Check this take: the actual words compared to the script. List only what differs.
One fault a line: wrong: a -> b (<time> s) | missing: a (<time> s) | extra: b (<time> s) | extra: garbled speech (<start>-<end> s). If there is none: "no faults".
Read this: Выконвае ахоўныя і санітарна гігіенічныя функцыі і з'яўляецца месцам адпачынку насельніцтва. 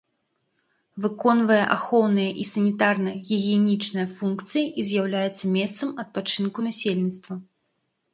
no faults